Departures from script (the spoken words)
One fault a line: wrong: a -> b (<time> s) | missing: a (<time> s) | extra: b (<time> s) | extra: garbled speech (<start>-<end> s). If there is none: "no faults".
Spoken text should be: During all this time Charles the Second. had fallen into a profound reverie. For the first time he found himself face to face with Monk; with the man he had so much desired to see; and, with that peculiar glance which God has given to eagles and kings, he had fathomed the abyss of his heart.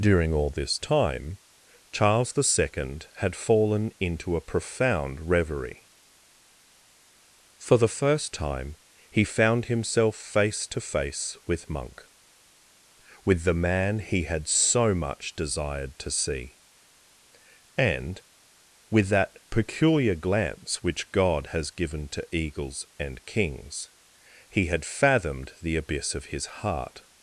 no faults